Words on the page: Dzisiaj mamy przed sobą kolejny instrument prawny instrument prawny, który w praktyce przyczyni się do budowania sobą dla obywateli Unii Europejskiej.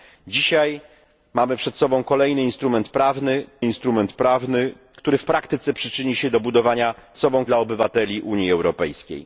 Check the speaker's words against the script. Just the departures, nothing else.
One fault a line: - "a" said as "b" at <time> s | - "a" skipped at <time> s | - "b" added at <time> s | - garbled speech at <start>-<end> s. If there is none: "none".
none